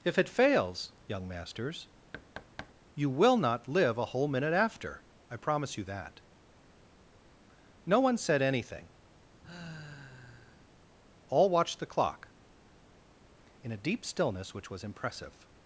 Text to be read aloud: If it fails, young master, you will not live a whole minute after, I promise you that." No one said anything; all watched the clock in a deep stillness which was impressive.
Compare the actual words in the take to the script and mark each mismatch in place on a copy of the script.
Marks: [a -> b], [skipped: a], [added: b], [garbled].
If it fails, young [master, -> masters] you will not live a whole minute after, I promise you that." No one said anything; all watched the clock in a deep stillness which was impressive.